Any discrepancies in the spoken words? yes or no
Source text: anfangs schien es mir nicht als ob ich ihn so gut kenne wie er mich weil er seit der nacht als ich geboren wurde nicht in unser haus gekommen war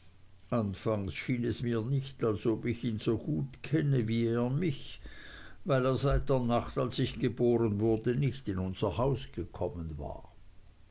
no